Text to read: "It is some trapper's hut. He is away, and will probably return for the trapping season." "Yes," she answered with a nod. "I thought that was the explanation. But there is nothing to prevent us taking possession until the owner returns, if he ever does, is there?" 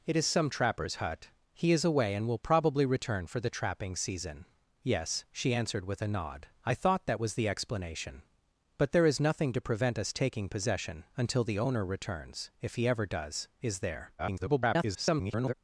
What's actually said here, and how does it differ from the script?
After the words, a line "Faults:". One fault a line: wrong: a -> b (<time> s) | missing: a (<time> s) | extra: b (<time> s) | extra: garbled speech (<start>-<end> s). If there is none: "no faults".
"It is some trapper's hut. He is away, and will probably return for the trapping season." "Yes," she answered with a nod. "I thought that was the explanation. But there is nothing to prevent us taking possession until the owner returns, if he ever does, is there?" [garbled]
Faults:
extra: garbled speech (14.2-15.5 s)